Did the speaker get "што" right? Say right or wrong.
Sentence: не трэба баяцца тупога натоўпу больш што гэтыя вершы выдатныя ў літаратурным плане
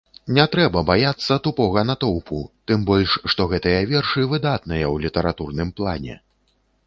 right